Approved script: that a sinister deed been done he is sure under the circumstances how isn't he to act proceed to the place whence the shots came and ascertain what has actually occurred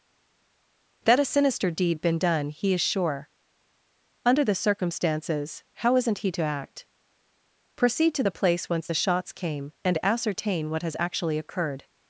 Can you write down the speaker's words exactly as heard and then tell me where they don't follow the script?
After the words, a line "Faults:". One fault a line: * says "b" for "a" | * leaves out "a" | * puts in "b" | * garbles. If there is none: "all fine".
that a sinister deed been done he is sure under the circumstances how isn't he to act proceed to the place whence the shots came and ascertain what has actually occurred
Faults:
all fine